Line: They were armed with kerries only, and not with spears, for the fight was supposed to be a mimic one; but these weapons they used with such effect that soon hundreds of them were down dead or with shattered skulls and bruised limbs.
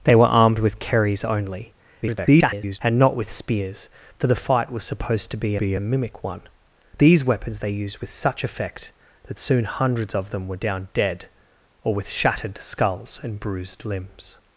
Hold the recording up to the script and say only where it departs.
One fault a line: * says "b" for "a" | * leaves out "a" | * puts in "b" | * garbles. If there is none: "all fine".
* garbles
* puts in "be"
* leaves out "but"